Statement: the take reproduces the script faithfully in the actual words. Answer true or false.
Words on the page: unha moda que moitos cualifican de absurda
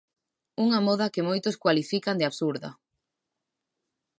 true